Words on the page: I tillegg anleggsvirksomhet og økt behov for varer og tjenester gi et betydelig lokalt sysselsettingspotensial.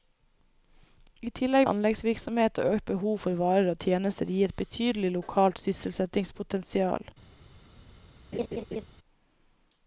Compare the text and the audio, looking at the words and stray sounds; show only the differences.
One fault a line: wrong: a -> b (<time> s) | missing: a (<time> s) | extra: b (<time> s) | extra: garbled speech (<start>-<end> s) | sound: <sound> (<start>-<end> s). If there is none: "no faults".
sound: laugh (8.3-8.8 s)